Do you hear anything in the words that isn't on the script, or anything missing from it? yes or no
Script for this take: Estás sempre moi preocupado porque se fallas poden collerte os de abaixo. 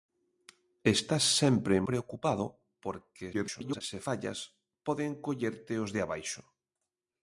yes